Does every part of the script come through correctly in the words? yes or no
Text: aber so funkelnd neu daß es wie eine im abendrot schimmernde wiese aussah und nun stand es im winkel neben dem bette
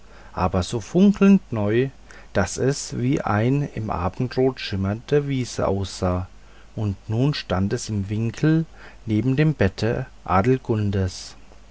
yes